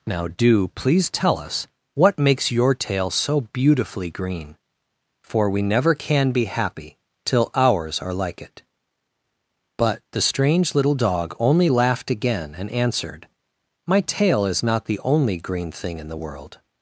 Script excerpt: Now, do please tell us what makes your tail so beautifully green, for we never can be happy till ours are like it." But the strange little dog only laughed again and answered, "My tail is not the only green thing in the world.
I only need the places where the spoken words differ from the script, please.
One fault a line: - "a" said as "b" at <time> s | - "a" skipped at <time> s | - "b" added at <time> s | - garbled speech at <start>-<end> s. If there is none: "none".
none